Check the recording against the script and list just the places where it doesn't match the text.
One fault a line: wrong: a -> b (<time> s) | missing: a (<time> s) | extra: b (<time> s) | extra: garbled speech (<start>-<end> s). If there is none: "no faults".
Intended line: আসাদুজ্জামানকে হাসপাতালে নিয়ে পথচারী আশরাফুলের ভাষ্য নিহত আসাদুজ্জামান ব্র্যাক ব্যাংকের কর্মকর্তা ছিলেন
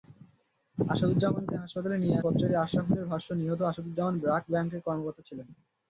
no faults